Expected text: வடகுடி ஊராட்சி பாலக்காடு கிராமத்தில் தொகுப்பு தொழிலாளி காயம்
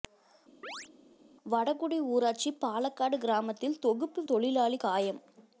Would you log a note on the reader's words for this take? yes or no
no